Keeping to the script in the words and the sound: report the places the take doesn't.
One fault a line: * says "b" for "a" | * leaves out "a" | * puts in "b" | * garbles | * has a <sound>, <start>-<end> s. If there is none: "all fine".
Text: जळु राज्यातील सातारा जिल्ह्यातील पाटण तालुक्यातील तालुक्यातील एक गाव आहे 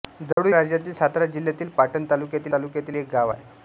* has a dropout, 0.3-0.4 s